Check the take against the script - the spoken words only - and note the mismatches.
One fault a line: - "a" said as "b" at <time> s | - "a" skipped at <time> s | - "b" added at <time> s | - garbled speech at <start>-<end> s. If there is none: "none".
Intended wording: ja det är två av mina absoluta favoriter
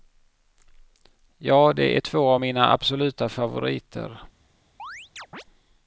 none